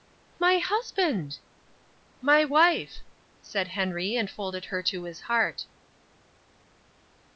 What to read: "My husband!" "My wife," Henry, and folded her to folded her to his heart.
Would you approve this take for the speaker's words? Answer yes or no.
no